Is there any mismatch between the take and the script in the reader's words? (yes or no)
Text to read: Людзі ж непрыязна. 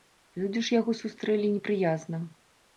yes